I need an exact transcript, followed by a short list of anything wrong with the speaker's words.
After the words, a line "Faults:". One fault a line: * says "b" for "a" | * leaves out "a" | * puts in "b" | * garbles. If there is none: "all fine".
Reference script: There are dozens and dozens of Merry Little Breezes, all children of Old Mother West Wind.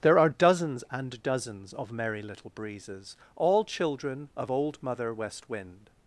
There are dozens and dozens of Merry Little Breezes, all children of Old Mother West Wind.
Faults:
all fine